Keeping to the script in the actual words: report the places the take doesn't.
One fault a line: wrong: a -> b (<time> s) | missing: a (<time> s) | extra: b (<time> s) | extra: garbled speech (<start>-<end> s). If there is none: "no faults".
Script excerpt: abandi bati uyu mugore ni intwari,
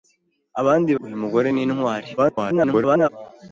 missing: bati (0.9 s)
extra: garbled speech (2.2-3.1 s)